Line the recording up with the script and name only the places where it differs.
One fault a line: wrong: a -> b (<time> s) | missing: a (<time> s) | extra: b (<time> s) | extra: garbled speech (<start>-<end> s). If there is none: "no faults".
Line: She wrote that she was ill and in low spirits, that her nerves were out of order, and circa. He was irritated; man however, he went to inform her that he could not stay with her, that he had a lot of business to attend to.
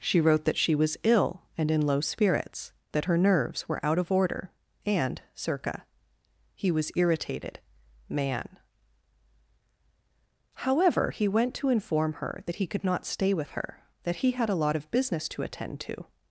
no faults